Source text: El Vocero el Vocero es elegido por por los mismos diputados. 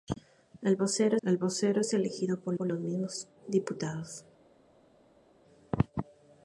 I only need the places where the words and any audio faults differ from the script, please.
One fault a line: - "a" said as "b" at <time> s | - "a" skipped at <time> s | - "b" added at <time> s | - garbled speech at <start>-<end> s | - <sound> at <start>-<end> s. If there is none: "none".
none